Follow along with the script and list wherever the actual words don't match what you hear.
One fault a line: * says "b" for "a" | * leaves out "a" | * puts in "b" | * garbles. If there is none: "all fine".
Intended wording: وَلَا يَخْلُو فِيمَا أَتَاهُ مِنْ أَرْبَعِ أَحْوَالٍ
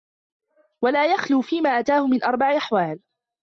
all fine